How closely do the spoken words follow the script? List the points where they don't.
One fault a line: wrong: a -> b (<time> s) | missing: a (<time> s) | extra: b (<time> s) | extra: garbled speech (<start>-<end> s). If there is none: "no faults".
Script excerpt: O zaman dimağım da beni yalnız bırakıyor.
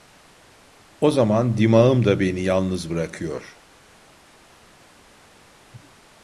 no faults